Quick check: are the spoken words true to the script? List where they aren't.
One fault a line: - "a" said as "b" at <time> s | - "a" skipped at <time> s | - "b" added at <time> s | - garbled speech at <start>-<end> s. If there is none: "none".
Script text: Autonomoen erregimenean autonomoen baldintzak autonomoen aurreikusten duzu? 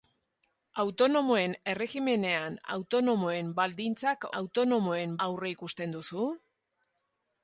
none